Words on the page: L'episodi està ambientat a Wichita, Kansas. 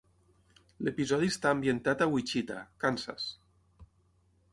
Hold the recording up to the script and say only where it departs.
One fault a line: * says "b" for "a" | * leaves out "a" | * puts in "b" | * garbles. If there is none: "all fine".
all fine